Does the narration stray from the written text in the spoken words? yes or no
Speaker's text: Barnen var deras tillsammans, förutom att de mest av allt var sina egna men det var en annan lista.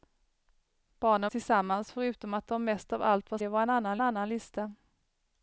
yes